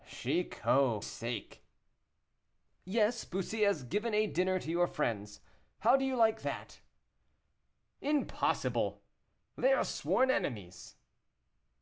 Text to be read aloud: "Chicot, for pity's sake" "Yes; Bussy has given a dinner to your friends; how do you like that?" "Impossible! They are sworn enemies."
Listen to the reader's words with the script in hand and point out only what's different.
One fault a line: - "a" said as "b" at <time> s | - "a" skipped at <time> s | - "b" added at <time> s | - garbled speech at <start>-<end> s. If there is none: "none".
- "for pity's" skipped at 1.0 s